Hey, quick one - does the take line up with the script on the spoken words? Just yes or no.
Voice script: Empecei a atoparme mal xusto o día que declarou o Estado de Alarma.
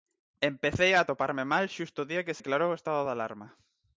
yes